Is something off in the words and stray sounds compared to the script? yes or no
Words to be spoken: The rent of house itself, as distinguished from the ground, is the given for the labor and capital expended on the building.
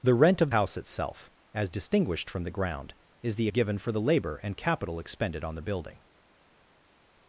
no